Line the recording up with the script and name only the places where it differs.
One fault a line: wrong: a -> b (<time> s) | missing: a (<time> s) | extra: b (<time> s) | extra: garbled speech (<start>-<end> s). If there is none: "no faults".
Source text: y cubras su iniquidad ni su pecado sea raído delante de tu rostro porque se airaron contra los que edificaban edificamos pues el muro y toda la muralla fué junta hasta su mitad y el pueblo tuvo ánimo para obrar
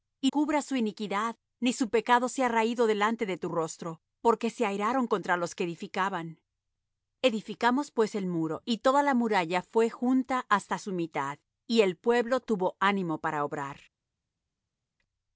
no faults